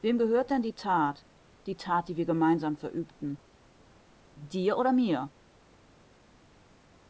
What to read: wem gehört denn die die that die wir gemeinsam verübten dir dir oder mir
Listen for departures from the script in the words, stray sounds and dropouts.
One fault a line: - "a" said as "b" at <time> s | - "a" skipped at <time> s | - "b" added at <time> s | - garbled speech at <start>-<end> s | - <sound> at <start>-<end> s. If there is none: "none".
- "that" added at 0.7 s
- "dir" skipped at 4.8 s